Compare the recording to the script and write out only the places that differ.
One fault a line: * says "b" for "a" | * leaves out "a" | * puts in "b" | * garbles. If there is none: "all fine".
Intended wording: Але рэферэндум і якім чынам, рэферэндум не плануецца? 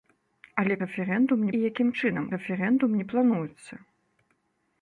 all fine